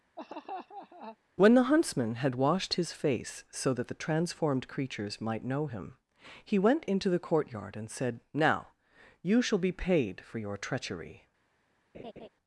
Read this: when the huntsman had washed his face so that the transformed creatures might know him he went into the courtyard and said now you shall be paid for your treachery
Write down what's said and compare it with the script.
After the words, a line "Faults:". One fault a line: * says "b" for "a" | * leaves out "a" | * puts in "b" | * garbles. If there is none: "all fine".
when the huntsman had washed his face so that the transformed creatures might know him he went into the courtyard and said now you shall be paid for your treachery
Faults:
all fine